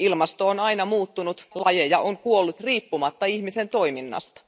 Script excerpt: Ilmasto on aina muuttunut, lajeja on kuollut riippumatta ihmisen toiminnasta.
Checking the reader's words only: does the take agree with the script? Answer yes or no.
yes